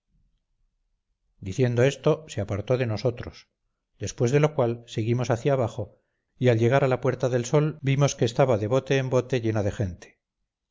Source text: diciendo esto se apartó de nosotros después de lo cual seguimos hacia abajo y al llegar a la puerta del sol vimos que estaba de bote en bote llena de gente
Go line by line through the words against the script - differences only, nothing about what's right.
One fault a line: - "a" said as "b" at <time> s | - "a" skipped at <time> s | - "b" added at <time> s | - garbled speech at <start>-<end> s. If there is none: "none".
none